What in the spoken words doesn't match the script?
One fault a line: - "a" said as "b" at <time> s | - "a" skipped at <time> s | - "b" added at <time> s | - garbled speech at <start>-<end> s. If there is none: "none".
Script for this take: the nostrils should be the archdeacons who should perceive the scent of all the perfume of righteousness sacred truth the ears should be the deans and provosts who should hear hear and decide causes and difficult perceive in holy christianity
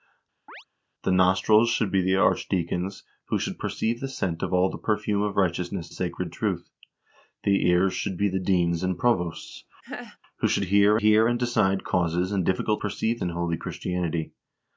none